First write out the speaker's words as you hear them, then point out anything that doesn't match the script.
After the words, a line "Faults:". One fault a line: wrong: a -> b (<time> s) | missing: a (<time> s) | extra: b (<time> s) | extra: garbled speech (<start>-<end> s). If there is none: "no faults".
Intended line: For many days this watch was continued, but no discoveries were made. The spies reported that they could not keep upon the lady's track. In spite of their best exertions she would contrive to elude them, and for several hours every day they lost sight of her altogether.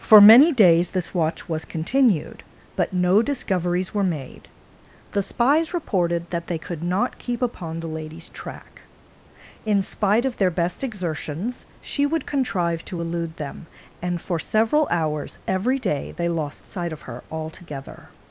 For many days this watch was continued, but no discoveries were made. The spies reported that they could not keep upon the lady's track. In spite of their best exertions she would contrive to elude them, and for several hours every day they lost sight of her altogether.
Faults:
no faults